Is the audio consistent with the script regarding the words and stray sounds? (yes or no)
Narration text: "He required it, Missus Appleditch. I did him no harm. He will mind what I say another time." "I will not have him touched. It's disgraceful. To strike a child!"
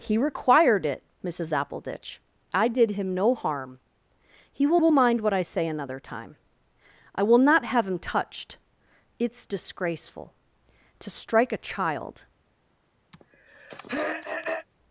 no